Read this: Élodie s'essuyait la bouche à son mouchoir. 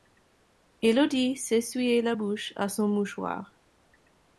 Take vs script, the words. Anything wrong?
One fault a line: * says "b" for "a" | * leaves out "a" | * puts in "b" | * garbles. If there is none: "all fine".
all fine